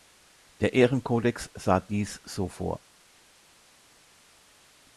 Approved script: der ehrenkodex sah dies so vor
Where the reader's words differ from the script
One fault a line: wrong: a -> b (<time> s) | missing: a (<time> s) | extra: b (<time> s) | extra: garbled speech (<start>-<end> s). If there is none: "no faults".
no faults